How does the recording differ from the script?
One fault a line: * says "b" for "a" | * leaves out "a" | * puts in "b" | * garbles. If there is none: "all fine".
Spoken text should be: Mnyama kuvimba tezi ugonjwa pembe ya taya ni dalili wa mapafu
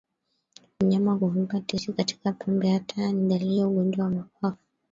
* says "katika" for "ugonjwa"
* puts in "ya ugonjwa"